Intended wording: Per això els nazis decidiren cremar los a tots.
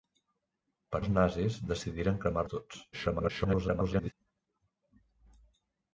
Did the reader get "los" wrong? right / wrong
wrong